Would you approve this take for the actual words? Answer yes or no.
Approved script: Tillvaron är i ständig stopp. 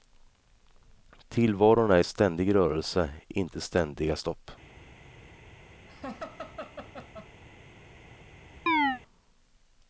no